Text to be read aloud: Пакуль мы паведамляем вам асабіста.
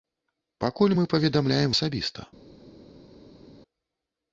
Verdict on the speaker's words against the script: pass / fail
fail